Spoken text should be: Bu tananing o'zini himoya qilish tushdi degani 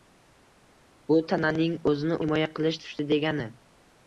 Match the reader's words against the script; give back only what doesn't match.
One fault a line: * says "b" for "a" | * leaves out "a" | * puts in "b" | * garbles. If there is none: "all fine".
all fine